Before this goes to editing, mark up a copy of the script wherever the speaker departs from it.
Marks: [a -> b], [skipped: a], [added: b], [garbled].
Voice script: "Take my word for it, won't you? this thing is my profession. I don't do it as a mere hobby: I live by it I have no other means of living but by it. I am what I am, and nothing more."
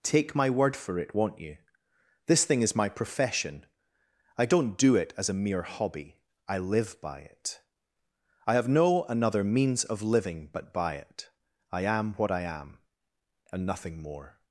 "Take my word for it, won't you? this thing is my profession. I don't do it as a mere hobby: I live by it I have no [other -> another] means of living but by it. I am what I am, and nothing more."